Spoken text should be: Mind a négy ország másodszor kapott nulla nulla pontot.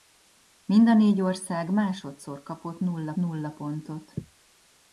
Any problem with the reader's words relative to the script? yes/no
no